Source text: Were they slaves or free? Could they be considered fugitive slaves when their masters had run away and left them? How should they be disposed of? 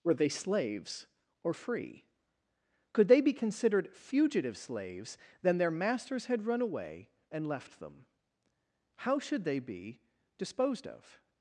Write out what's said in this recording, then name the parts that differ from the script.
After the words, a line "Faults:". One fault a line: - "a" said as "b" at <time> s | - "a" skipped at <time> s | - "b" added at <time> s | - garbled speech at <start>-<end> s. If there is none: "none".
Were they slaves or free? Could they be considered fugitive slaves then their masters had run away and left them? How should they be disposed of?
Faults:
- "when" said as "then" at 5.4 s